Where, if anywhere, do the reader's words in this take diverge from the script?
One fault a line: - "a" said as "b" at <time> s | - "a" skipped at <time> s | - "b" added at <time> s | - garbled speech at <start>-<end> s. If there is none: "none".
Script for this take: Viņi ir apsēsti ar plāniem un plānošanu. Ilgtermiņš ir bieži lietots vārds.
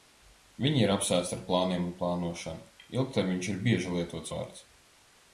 none